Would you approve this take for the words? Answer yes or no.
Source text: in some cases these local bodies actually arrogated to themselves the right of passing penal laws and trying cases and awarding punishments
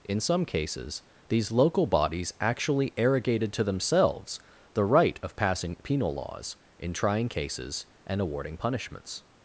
no